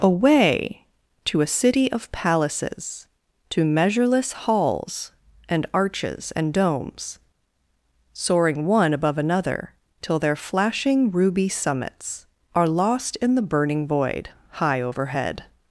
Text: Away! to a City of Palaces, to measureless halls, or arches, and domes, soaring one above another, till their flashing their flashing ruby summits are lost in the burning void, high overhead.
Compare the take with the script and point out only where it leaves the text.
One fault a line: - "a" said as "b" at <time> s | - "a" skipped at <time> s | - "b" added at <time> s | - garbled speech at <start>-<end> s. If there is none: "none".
- "or" said as "and" at 5.5 s
- "their flashing" skipped at 11.1 s